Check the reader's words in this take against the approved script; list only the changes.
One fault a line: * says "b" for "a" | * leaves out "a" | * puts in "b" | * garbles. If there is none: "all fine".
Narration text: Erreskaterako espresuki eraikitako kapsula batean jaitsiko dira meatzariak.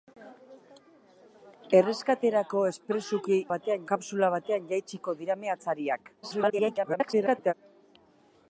* says "batean" for "eraikitako"
* garbles